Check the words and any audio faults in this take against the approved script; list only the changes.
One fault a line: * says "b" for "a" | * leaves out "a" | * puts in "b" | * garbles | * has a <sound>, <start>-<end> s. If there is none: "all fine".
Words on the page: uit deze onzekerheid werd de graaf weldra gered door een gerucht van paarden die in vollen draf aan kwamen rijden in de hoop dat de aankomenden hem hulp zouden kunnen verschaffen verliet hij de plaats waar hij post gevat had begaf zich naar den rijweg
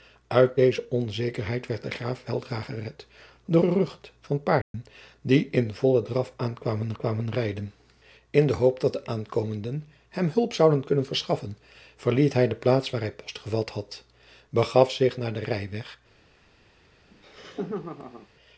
* leaves out "een"
* has a dropout, 4.6-4.7 s
* puts in "kwamen"
* has a laugh, 17.1-18.3 s